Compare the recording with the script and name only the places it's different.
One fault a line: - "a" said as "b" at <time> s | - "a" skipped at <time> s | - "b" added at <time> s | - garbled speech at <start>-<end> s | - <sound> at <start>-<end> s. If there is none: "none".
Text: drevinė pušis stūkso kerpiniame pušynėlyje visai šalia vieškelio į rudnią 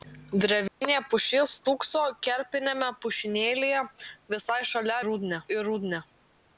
- dropout at 0.7-0.8 s
- "vieškelio" said as "rudnią" at 5.1 s